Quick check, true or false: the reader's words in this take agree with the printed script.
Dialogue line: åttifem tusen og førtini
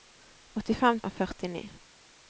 false